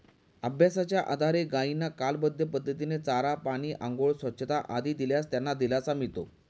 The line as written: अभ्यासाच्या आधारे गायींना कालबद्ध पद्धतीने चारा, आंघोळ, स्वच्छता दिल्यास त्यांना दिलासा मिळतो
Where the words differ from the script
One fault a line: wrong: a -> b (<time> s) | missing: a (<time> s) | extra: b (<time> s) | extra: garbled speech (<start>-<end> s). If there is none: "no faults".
extra: पाणी (3.5 s)
extra: आदी (4.7 s)